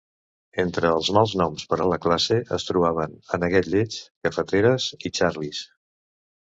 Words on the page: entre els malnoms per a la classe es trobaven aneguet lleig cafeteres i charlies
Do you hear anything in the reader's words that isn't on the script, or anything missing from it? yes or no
no